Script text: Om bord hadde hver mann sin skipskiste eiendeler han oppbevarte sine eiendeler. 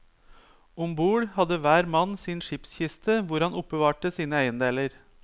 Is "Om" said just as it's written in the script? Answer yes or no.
yes